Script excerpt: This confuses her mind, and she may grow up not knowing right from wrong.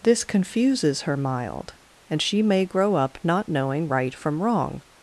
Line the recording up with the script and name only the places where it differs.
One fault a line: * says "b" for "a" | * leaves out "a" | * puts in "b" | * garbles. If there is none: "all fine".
* says "mild" for "mind"